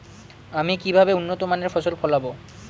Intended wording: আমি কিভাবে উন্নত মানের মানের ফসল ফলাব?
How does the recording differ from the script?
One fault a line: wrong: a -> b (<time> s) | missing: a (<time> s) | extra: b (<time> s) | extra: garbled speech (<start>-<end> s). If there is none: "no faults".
missing: মানের (1.7 s)